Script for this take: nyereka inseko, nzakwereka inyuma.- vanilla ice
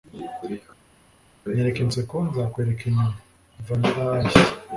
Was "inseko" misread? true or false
false